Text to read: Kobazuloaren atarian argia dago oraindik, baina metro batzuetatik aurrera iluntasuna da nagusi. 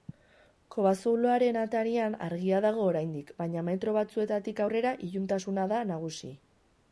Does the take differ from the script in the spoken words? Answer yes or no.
no